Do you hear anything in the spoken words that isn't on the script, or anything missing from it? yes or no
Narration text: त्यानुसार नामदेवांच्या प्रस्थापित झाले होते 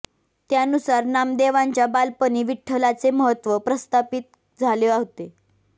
yes